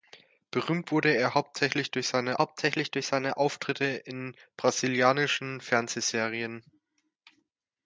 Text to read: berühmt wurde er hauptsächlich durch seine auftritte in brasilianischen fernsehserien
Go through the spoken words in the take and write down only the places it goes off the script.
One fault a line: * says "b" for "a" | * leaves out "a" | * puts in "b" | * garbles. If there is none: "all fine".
* puts in "hauptsächlich durch seine"